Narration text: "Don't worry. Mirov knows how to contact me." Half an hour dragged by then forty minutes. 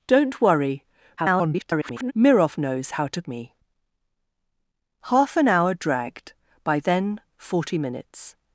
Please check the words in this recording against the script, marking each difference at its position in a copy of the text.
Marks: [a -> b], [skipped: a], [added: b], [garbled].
"Don't worry. [garbled] Mirov knows how to [skipped: contact] me." Half an hour dragged by then forty minutes.